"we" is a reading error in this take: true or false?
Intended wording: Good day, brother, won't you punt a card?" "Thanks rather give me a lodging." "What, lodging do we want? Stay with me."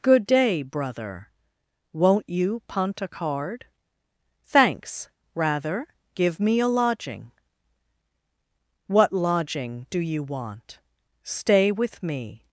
true